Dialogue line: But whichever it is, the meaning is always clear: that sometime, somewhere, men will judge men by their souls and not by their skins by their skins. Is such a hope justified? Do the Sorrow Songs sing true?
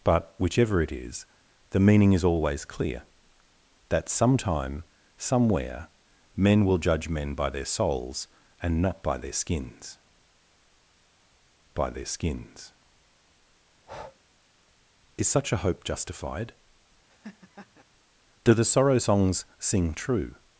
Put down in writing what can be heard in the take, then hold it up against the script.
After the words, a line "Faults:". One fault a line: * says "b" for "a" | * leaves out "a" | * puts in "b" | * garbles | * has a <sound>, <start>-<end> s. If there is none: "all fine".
But whichever it is, the meaning is always clear: that sometime, somewhere, men will judge men by their souls and not by their skins by their skins. Is such a hope justified? Do the Sorrow Songs sing true?
Faults:
* has a breath, 13.7-14.2 s
* has a laugh, 17.1-17.8 s